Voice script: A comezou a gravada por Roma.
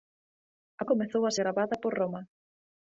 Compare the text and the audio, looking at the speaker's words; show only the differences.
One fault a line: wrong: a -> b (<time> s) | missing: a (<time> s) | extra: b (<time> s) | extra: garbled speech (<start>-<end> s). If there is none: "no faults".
no faults